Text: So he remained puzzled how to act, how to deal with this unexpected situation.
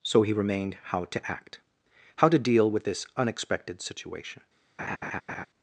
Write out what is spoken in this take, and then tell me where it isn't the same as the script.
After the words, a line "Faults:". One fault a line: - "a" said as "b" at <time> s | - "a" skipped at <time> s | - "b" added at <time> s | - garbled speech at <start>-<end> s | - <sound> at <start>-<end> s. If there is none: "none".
So he remained how to act, how to deal with this unexpected situation.
Faults:
- "puzzled" skipped at 0.8 s
- laugh at 4.8-5.5 s